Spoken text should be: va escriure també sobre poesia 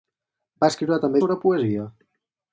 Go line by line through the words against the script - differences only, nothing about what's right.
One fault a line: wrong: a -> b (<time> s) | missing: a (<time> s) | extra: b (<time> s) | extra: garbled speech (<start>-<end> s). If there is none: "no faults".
no faults